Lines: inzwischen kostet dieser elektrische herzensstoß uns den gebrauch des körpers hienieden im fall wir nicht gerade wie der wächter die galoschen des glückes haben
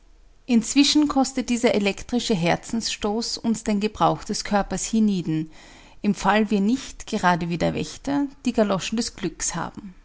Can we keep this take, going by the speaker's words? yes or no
yes